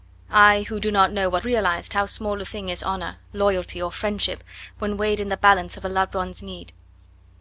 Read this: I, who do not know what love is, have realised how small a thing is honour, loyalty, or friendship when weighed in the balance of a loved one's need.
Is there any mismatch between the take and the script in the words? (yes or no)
yes